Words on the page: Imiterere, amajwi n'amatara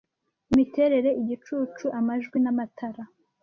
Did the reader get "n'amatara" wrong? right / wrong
right